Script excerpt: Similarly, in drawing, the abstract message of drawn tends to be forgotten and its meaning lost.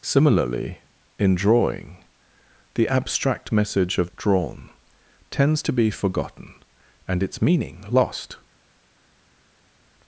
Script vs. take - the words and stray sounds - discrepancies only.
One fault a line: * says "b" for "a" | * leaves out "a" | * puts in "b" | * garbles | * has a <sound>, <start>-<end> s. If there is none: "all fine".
all fine